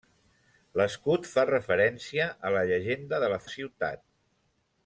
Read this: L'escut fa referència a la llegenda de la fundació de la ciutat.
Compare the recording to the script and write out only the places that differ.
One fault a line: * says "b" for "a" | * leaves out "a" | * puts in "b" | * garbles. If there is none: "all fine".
* leaves out "fundació de"